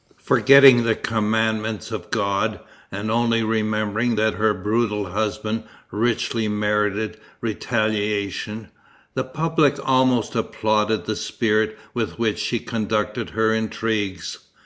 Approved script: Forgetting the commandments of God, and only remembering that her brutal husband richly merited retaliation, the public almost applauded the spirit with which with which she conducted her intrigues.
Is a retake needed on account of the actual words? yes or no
yes